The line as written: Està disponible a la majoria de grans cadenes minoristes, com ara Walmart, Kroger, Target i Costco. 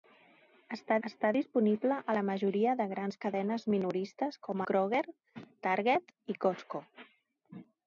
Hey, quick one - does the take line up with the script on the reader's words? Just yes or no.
no